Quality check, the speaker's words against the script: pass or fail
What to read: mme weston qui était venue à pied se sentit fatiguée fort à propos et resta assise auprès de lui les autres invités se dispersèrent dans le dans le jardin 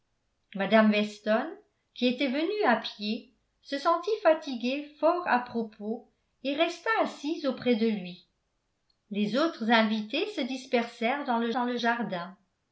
pass